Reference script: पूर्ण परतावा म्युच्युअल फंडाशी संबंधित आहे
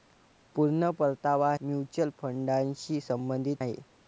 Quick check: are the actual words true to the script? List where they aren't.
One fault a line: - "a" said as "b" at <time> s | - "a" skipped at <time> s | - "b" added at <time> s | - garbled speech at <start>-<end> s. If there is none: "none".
none